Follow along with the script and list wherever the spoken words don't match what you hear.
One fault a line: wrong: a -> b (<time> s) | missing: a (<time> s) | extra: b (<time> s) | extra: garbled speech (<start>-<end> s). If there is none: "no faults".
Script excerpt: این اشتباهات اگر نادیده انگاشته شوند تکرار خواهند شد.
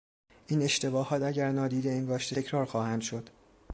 missing: شوند (2.4 s)